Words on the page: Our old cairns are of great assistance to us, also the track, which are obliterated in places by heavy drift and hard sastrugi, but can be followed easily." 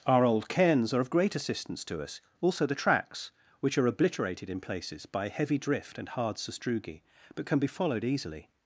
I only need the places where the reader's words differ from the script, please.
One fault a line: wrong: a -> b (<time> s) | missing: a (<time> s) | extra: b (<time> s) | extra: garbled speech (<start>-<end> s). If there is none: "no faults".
wrong: track -> tracks (2.8 s)